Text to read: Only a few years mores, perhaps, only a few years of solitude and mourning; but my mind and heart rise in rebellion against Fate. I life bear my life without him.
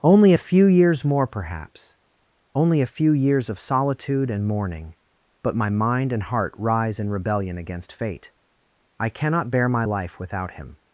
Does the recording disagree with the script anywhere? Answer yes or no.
yes